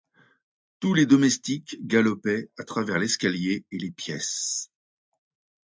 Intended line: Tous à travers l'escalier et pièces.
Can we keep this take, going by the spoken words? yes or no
no